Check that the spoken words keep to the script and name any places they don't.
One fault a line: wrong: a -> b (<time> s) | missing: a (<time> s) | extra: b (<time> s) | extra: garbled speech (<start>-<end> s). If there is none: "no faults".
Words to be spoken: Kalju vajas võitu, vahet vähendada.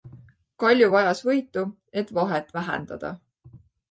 extra: et (2.0 s)